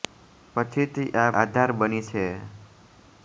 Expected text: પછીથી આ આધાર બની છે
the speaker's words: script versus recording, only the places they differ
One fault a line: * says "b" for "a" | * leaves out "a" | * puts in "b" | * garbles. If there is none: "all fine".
all fine